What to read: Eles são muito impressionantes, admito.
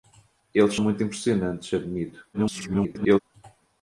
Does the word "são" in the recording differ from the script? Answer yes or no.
yes